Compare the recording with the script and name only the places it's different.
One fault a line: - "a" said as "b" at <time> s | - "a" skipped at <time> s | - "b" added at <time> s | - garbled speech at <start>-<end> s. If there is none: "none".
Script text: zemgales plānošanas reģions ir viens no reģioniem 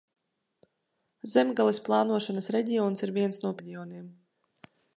none